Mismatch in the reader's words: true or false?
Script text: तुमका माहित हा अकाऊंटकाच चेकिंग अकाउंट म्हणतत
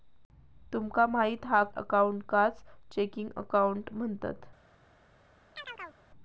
false